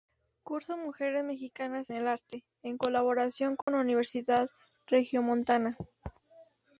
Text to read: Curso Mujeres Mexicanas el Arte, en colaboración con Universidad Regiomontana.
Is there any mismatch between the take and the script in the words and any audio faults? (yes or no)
yes